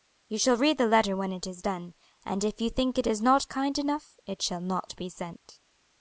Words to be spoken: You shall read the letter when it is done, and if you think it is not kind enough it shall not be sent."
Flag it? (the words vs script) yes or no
no